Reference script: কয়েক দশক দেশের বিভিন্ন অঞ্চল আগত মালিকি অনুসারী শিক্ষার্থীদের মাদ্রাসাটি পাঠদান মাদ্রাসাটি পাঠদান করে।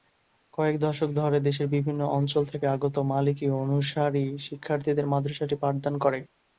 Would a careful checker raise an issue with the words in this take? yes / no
yes